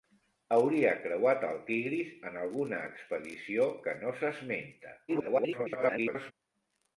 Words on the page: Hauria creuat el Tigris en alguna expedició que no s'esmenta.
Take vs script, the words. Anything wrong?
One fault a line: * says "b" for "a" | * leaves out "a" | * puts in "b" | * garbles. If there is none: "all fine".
* garbles